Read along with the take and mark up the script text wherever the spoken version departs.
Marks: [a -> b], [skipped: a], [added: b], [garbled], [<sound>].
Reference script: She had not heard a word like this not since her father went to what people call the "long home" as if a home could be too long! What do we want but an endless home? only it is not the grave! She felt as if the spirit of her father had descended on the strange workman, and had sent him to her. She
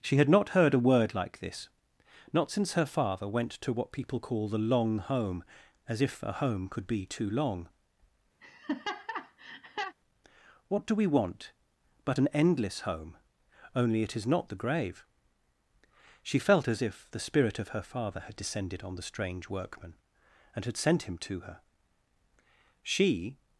She had not heard a word like this not since her father went to what people call the "long home" as if a home could be too long! [laugh] What do we want but an endless home? only it is not the grave! She felt as if the spirit of her father had descended on the strange workman, and had sent him to her. She